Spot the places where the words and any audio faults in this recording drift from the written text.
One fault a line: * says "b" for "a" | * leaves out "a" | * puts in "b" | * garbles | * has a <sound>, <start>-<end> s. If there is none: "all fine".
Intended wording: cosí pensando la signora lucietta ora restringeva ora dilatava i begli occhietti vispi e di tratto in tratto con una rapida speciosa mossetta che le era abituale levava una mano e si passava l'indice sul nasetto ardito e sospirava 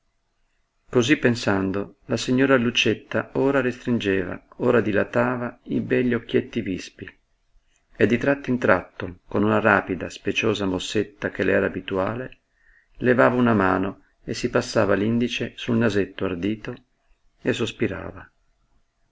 all fine